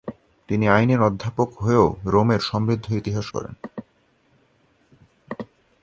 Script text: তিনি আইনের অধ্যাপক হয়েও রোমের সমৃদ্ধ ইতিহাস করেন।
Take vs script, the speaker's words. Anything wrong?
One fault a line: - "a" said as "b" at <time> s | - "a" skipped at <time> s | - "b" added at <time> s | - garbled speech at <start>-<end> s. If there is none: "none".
none